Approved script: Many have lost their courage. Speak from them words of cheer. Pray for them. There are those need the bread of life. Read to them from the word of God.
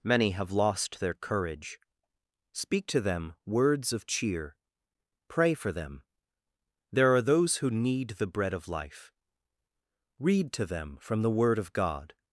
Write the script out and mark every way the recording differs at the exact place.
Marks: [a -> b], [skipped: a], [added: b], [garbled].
Many have lost their courage. Speak [from -> to] them words of cheer. Pray for them. There are those [added: who] need the bread of life. Read to them from the word of God.